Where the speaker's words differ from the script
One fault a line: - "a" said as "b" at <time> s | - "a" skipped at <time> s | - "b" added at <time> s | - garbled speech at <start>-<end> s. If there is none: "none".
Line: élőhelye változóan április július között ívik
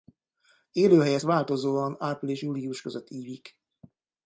none